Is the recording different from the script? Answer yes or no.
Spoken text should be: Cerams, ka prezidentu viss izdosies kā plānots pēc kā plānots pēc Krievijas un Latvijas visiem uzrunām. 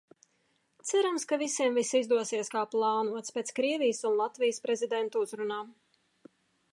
yes